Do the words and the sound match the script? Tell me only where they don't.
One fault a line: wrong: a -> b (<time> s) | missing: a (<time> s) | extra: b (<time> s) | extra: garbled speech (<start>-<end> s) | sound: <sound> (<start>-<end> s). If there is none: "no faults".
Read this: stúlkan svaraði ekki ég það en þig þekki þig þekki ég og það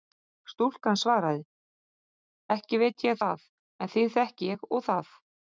extra: veit (2.8 s)
missing: þig þekki (4.5 s)